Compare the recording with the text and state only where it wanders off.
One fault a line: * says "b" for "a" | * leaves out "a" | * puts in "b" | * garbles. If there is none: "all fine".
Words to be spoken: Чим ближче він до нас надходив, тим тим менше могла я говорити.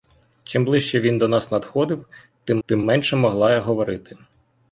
all fine